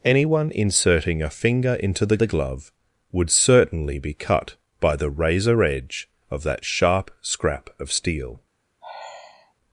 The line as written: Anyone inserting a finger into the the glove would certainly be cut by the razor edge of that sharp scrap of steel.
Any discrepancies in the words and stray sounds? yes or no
yes